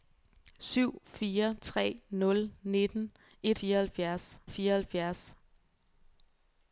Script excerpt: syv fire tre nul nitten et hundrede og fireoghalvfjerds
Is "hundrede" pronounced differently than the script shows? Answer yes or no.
yes